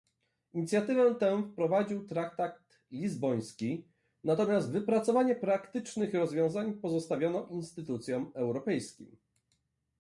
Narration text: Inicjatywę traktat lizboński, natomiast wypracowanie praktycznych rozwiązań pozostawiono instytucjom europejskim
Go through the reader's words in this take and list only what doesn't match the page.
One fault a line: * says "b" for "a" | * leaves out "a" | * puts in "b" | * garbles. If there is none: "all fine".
* puts in "tę wprowadził"